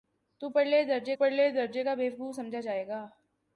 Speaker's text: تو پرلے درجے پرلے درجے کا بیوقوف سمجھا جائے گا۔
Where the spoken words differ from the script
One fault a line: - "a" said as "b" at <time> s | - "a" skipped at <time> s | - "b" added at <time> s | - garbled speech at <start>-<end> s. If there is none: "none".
none